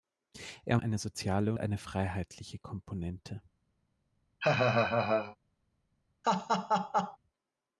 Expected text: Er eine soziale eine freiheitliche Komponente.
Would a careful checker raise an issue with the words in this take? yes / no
no